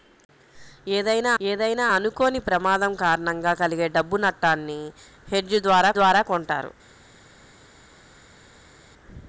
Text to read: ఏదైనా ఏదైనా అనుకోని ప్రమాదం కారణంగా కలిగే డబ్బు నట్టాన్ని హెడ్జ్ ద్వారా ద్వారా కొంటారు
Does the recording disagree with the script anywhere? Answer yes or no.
no